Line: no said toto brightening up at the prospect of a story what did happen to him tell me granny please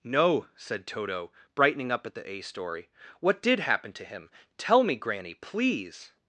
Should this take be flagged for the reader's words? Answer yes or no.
yes